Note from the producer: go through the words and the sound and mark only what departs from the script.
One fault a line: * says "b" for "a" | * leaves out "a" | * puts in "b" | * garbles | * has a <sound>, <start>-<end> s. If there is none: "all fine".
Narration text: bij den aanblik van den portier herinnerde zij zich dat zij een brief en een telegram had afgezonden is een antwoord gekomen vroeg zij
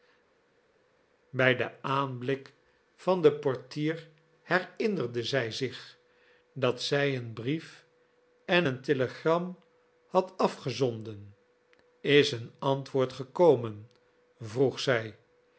all fine